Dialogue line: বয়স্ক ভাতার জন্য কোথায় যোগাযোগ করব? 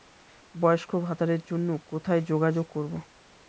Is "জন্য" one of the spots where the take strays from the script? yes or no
no